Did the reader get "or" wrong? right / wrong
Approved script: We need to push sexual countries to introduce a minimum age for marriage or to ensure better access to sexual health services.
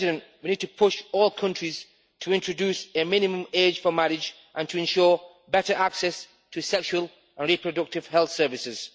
wrong